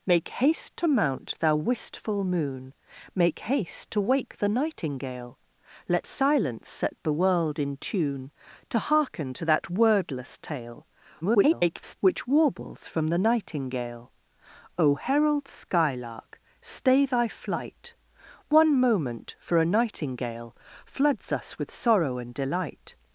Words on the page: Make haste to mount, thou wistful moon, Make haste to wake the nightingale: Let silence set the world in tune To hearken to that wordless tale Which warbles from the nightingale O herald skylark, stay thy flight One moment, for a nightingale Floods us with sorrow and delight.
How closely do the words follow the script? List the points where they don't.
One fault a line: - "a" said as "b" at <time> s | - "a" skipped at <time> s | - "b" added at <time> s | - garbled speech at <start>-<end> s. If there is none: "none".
- garbled speech at 11.2-12.0 s